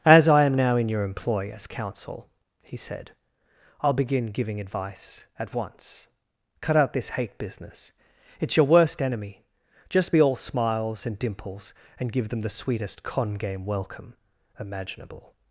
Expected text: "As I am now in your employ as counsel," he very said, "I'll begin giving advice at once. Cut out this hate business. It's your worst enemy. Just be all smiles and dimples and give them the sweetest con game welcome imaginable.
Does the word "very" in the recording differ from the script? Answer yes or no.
yes